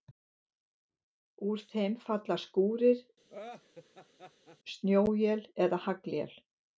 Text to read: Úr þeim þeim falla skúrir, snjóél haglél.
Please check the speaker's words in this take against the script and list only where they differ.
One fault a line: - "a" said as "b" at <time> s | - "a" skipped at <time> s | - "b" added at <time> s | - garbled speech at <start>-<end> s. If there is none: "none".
- "þeim" skipped at 2.0 s
- "eða" added at 5.7 s